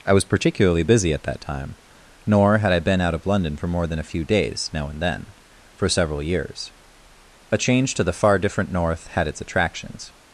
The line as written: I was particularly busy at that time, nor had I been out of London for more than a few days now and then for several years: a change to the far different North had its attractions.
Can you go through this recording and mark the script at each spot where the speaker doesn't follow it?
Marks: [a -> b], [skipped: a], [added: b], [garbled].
I was particularly busy at that time, nor had I been out of London for more than a few days now and then for several years: a change to the far different North had its attractions.